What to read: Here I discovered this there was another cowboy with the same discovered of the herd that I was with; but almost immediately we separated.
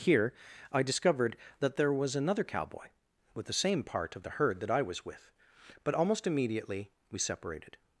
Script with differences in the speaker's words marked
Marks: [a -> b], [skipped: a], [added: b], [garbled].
Here I discovered [this -> that] there was another cowboy with the same [discovered -> part] of the herd that I was with; but almost immediately we separated.